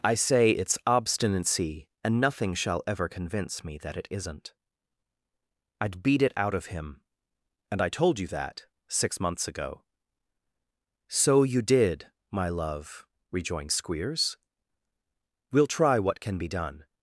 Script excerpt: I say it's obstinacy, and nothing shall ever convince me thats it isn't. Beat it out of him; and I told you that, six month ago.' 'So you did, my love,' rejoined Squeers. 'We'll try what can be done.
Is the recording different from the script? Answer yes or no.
yes